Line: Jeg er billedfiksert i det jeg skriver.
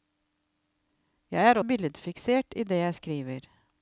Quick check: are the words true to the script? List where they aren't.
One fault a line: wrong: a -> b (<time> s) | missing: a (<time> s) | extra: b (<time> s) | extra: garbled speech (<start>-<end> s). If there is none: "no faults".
no faults